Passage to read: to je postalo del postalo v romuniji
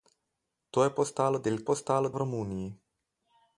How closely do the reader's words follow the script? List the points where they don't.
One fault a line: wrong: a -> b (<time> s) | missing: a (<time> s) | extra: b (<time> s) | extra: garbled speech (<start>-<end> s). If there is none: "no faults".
no faults